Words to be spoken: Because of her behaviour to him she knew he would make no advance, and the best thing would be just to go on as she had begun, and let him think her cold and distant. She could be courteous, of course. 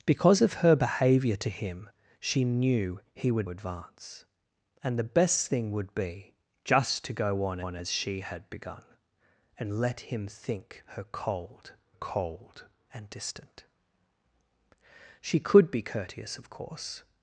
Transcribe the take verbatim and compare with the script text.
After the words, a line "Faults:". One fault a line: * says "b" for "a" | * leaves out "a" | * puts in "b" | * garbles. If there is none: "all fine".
Because of her behaviour to him she knew he would advance, and the best thing would be just to go on on as she had begun, and let him think her cold cold and distant. She could be courteous, of course.
Faults:
* leaves out "make no"
* puts in "on"
* puts in "cold"